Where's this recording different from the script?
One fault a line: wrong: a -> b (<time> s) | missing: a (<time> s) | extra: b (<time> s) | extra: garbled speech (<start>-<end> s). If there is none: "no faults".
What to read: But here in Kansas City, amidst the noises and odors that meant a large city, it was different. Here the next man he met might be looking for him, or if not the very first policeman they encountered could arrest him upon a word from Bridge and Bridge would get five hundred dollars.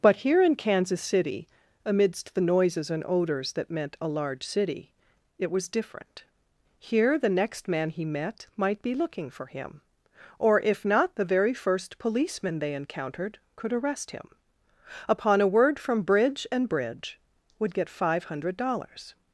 no faults